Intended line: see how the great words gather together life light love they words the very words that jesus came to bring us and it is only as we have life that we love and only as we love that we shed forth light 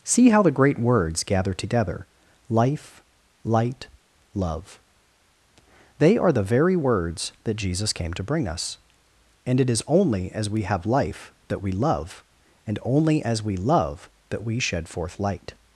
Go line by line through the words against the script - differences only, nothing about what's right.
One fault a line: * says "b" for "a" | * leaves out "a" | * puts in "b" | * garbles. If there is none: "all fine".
* says "are" for "words"